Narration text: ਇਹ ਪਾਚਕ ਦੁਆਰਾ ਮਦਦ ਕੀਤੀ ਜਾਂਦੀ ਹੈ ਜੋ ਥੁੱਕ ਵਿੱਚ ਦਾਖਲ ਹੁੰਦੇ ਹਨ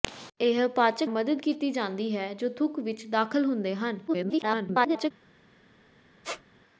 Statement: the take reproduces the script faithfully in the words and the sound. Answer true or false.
false